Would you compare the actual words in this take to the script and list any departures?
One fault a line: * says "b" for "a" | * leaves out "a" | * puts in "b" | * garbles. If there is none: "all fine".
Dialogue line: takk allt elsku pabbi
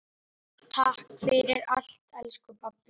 * puts in "fyrir"